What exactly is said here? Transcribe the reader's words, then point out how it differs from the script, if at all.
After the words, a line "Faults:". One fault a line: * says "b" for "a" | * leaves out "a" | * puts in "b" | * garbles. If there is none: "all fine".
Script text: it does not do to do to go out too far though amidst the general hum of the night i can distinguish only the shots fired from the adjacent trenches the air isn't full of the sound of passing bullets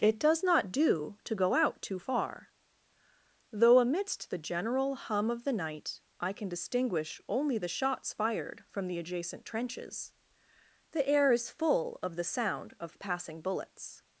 it does not do to go out too far though amidst the general hum of the night i can distinguish only the shots fired from the adjacent trenches the air is full of the sound of passing bullets
Faults:
* leaves out "do to"
* says "is" for "isn't"